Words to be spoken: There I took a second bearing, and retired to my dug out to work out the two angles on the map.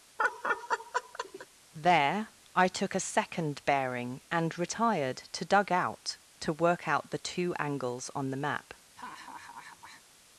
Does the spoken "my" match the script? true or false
false